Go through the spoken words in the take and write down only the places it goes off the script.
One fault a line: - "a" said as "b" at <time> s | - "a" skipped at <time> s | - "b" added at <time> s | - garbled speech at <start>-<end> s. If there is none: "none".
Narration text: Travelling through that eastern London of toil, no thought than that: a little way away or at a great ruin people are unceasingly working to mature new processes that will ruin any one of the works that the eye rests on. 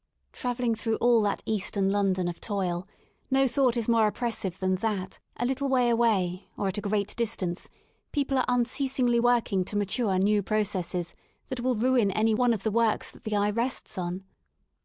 - "all" added at 0.9 s
- "is more oppressive" added at 3.8 s
- "ruin" said as "distance" at 7.2 s